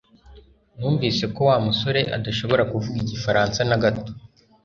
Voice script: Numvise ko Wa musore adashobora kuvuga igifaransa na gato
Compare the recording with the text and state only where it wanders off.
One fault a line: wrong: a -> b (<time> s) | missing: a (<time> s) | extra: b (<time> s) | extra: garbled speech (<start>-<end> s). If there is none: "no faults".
no faults